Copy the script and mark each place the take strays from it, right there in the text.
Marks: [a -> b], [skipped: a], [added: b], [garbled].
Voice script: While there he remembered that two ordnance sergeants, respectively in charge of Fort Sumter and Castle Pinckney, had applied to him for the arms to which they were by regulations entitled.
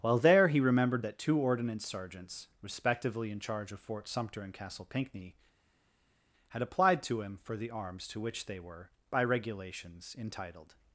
While there he remembered that two ordnance sergeants, respectively in charge of Fort Sumter and Castle Pinckney, had applied to him for the arms to which they were by regulations entitled.